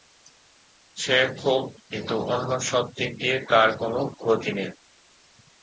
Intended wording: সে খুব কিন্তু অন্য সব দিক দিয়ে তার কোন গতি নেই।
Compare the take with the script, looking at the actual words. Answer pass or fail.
pass